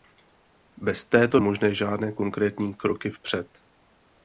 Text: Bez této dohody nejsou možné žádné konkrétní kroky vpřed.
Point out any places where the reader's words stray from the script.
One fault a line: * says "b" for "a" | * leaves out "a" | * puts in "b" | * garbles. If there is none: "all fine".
* leaves out "dohody nejsou"